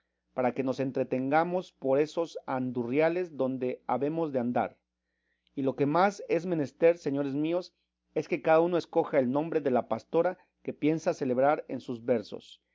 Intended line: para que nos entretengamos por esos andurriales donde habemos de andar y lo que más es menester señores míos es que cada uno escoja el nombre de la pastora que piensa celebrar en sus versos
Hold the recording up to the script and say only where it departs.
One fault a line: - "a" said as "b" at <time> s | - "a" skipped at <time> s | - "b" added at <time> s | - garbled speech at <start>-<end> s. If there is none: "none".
none